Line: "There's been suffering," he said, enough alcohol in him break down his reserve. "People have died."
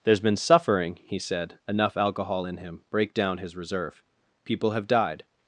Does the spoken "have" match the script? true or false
true